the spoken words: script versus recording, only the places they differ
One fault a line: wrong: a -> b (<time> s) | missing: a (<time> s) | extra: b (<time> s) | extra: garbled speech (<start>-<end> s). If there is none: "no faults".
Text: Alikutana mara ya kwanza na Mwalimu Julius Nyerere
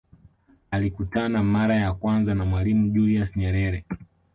no faults